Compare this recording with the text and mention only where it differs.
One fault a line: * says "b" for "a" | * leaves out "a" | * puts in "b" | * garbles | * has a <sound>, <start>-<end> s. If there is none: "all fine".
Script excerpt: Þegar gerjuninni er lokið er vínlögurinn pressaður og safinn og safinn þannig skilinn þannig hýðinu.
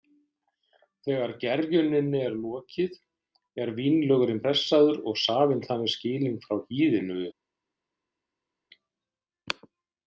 * leaves out "og safinn"
* says "frá" for "þannig"